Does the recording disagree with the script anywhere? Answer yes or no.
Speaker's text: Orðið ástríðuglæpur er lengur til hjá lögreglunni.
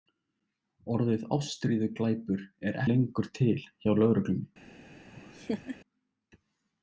no